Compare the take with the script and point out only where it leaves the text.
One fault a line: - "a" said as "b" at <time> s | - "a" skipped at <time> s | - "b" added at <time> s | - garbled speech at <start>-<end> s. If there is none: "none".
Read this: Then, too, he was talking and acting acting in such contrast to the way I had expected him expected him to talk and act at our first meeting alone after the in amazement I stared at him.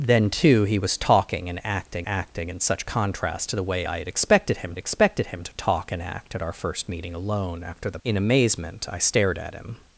none